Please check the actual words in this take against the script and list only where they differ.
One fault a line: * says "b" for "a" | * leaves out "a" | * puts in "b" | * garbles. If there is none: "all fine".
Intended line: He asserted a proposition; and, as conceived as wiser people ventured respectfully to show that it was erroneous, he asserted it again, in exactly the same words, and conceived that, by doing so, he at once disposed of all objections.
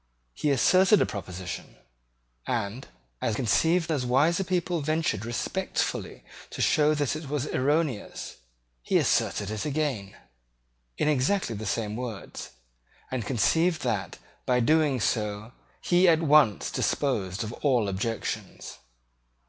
all fine